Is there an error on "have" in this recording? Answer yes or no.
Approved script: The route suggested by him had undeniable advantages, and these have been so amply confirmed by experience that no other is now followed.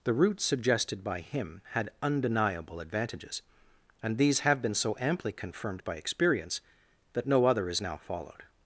no